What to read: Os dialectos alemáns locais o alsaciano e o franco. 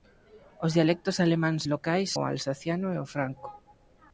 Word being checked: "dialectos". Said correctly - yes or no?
yes